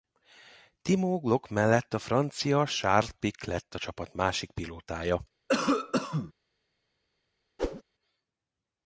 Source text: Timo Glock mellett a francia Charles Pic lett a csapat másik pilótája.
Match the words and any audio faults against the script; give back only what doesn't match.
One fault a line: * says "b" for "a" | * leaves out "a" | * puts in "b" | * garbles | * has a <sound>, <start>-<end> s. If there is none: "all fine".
* has a cough, 5.5-6.3 s
* has a whoosh, 7.6-7.8 s